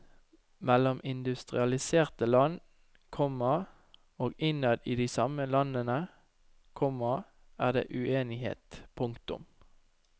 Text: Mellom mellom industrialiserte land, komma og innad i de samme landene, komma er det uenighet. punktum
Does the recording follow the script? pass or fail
fail